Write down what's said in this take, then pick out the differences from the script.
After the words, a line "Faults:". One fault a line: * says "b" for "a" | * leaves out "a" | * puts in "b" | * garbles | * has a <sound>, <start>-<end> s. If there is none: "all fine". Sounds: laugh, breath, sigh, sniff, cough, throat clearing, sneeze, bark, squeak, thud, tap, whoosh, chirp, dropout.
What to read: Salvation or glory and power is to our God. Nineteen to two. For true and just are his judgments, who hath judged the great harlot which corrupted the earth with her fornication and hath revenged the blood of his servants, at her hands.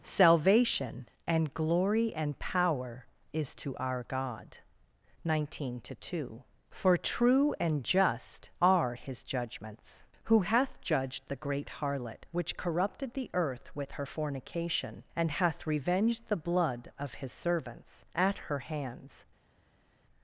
Salvation and glory and power is to our God. Nineteen to two. For true and just are his judgments, who hath judged the great harlot which corrupted the earth with her fornication and hath revenged the blood of his servants, at her hands.
Faults:
* says "and" for "or"